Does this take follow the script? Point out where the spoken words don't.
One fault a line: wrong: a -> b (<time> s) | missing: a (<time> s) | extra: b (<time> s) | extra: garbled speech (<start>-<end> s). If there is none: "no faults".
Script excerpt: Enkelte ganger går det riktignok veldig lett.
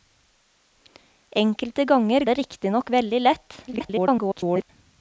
missing: går (2.2 s)
extra: garbled speech (3.7-4.7 s)